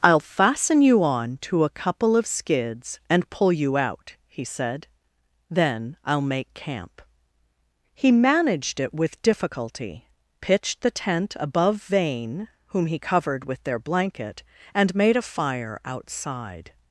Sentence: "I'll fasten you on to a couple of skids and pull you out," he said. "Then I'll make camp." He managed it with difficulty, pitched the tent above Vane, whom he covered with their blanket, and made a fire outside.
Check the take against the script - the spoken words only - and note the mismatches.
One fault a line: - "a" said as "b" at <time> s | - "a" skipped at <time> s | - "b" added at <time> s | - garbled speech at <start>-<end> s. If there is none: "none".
none